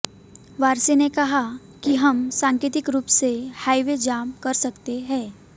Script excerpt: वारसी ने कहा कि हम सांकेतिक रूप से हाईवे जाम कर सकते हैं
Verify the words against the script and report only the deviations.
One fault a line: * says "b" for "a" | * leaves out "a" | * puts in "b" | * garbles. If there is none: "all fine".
all fine